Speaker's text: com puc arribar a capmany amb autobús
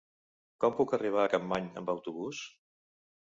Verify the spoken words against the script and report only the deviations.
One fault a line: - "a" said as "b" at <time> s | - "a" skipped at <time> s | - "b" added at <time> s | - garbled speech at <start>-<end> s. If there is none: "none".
none